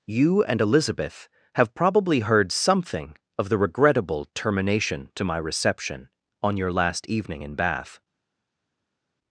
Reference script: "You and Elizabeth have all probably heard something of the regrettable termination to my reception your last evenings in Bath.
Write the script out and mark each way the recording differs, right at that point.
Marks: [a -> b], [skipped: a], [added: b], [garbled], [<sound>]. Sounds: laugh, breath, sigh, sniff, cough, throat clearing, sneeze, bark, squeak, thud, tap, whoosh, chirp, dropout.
"You and Elizabeth have [skipped: all] probably heard something of the regrettable termination to my reception [added: on] your last [evenings -> evening] in Bath.